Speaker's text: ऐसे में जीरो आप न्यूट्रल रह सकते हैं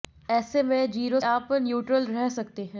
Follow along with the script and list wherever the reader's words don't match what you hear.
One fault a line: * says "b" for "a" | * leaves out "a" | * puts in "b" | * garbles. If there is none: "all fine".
all fine